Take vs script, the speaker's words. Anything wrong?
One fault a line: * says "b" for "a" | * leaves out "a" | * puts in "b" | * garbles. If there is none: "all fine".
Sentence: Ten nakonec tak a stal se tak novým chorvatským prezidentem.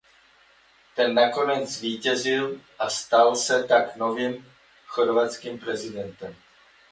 * says "zvítězil" for "tak"